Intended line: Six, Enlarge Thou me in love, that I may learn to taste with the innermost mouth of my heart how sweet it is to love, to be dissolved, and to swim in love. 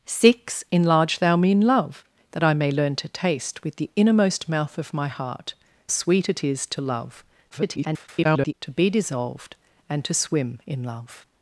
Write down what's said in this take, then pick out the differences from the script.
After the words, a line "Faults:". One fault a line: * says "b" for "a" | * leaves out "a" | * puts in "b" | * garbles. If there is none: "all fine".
Six, Enlarge Thou me in love, that I may learn to taste with the innermost mouth of my heart sweet it is to love, [garbled] to be dissolved, and to swim in love.
Faults:
* leaves out "how"
* garbles